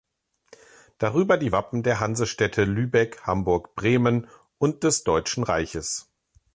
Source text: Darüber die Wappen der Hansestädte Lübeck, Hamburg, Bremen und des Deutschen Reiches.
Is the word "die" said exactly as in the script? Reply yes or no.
yes